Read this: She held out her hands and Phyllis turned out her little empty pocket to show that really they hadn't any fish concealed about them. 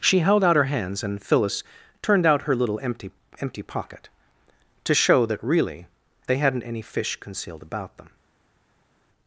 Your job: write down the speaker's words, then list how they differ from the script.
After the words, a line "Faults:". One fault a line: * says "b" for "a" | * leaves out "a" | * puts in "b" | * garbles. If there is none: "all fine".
She held out her hands and Phyllis turned out her little empty empty pocket to show that really they hadn't any fish concealed about them.
Faults:
* puts in "empty"